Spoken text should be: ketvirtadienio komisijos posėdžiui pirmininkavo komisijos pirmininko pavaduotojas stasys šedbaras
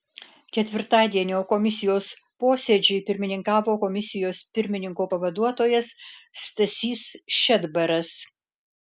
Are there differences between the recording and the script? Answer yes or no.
no